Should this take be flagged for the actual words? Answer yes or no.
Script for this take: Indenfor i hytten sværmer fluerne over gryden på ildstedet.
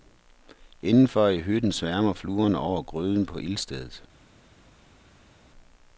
no